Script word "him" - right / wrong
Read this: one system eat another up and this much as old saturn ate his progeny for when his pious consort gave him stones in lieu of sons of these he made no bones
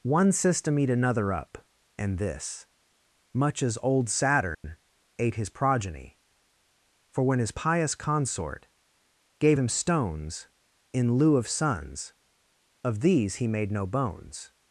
right